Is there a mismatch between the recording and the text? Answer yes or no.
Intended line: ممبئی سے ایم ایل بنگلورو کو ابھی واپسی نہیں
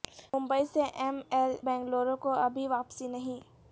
no